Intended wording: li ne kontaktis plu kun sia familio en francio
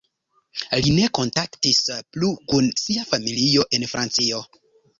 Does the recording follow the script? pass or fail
pass